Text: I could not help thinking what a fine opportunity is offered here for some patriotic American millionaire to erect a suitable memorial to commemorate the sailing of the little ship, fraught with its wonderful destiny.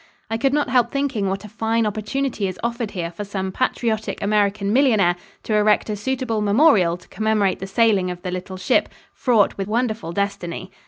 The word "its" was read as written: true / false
false